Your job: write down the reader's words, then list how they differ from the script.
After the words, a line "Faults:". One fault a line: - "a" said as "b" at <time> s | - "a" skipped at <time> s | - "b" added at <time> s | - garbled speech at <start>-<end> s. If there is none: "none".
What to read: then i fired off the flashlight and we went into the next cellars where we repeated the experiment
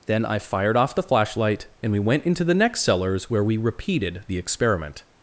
then i fired off the flashlight and we went into the next cellars where we repeated the experiment
Faults:
none